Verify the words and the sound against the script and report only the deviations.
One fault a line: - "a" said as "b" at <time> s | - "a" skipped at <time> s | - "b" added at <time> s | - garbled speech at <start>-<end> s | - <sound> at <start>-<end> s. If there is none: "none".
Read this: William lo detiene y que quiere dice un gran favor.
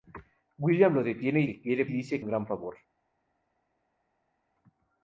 none